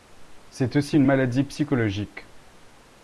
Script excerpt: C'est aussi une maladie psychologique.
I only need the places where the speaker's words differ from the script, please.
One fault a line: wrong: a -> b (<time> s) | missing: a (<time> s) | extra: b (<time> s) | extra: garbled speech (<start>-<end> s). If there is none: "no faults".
no faults